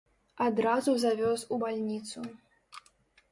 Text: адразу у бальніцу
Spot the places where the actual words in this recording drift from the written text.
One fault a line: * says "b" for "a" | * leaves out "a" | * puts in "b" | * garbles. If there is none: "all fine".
* puts in "завёз"